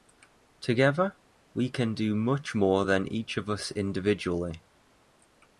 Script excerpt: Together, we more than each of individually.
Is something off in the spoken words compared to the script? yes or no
yes